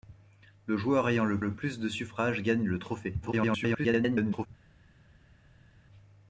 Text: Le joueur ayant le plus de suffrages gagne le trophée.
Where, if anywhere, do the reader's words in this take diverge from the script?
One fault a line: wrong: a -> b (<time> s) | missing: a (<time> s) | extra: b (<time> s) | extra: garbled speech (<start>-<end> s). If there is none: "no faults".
extra: le (1.4 s)
extra: garbled speech (3.2-4.5 s)